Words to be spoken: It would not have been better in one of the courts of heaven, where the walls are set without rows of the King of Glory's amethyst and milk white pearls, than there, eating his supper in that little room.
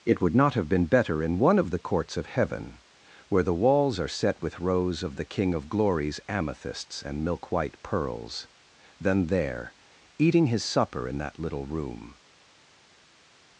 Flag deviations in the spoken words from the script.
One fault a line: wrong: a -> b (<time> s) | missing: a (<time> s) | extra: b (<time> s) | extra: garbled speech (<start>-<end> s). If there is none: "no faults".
wrong: without -> with (4.4 s)
wrong: amethyst -> amethysts (6.3 s)